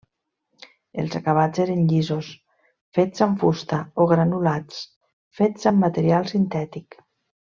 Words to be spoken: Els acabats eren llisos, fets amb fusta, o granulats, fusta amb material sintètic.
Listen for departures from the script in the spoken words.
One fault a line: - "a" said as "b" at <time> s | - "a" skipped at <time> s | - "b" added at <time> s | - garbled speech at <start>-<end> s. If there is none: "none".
- "fusta" said as "fets" at 5.4 s